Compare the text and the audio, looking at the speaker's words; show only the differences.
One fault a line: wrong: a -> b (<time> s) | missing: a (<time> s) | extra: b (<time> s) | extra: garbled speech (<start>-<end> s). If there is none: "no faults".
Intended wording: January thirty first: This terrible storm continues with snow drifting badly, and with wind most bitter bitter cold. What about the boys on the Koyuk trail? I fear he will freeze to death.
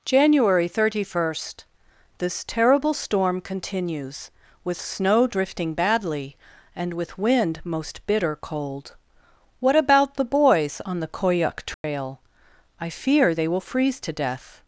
missing: bitter (8.3 s)
wrong: he -> they (13.3 s)